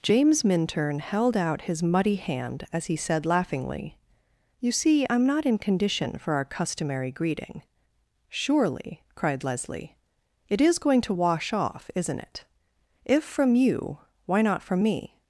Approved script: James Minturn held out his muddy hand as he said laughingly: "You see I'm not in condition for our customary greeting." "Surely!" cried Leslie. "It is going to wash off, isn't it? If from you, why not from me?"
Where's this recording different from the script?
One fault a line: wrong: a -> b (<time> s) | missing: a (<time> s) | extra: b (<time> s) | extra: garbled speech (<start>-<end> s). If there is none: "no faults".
no faults